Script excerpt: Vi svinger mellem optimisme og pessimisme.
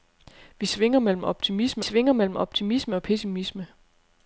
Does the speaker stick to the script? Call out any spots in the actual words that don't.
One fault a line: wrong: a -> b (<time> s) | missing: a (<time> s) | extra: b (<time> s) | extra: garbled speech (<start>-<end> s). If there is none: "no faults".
extra: svinger mellem optimisme (1.8 s)